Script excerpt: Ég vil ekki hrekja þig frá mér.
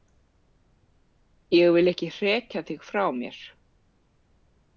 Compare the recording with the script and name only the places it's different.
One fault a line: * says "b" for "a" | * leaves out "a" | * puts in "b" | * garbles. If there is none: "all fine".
all fine